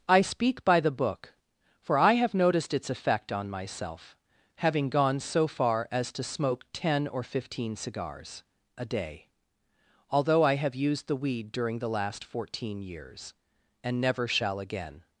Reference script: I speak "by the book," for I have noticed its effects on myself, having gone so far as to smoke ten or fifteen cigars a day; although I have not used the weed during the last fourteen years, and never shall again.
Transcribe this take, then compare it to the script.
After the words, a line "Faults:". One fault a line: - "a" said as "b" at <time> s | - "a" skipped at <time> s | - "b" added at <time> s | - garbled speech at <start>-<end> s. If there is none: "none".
I speak "by the book," for I have noticed its effect on myself, having gone so far as to smoke ten or fifteen cigars a day; although I have used the weed during the last fourteen years, and never shall again.
Faults:
- "effects" said as "effect" at 2.9 s
- "not" skipped at 10.8 s